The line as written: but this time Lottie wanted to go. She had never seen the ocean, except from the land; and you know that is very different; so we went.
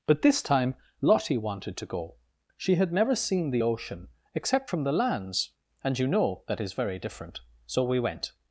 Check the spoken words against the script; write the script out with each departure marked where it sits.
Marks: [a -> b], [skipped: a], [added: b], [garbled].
but this time Lottie wanted to go. She had never seen the ocean, except from the [land; -> lands] and you know that is very different; so we went.